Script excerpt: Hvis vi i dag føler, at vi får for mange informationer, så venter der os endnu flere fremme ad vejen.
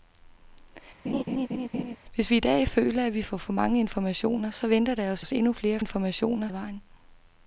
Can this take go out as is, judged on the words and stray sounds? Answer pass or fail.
fail